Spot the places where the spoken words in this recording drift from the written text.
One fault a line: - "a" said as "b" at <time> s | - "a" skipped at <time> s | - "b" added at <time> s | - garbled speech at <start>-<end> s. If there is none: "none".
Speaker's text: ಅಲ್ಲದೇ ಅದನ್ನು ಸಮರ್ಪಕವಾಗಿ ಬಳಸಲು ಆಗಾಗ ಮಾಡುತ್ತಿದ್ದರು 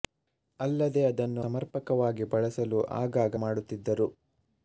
none